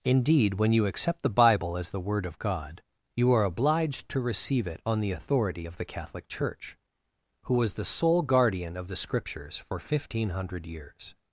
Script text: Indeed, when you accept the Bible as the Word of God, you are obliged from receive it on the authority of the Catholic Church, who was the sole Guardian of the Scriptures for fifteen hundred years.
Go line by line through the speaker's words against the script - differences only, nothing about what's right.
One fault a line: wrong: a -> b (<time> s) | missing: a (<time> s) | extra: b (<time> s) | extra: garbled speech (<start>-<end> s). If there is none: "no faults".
wrong: from -> to (4.1 s)